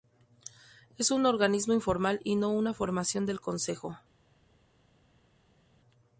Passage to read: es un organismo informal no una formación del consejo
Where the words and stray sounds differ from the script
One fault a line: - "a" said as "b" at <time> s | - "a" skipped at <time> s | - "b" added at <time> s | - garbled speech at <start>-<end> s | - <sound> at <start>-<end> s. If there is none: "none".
- "y" added at 2.2 s